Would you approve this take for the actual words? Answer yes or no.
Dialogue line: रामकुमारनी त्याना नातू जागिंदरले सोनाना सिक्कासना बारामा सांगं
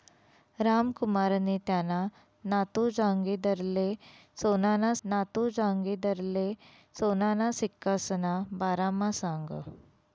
no